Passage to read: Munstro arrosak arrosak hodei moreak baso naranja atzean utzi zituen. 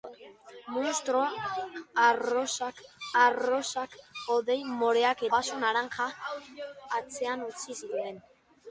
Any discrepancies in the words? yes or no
no